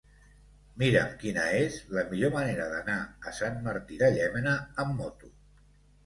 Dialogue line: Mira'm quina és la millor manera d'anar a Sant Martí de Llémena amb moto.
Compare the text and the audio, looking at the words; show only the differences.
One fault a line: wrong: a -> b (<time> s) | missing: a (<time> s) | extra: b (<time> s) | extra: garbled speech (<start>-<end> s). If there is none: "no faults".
no faults